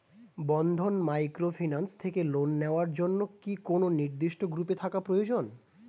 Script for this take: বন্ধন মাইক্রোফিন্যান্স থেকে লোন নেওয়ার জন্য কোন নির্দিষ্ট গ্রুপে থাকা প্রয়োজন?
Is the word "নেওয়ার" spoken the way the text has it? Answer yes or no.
yes